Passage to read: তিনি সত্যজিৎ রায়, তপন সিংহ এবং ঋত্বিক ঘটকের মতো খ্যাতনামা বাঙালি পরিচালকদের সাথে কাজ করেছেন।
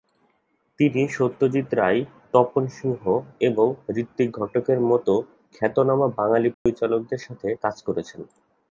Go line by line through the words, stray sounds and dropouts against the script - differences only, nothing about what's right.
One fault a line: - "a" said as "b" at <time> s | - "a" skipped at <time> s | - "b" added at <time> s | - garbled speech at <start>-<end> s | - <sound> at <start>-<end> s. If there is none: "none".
- dropout at 6.5-6.7 s